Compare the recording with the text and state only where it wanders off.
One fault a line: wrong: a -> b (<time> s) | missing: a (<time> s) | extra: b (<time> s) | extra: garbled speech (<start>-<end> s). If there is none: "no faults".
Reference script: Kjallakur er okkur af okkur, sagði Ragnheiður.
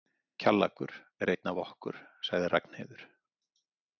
wrong: okkur -> einn (1.3 s)